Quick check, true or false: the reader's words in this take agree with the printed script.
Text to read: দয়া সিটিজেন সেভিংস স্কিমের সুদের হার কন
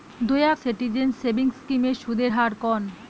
true